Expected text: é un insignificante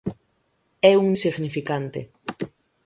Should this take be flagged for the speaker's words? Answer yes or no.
no